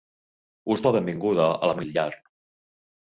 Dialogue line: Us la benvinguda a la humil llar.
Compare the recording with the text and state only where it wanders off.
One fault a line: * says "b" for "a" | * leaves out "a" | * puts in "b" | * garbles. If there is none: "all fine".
all fine